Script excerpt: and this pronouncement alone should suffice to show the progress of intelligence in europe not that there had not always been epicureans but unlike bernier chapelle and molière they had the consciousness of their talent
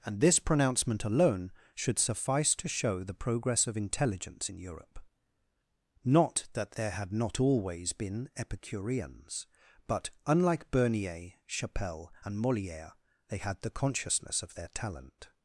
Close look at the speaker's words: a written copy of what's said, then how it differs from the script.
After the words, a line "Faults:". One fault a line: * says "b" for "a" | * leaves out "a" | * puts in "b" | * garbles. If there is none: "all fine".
and this pronouncement alone should suffice to show the progress of intelligence in europe not that there had not always been epicureans but unlike bernier chapelle and molière they had the consciousness of their talent
Faults:
all fine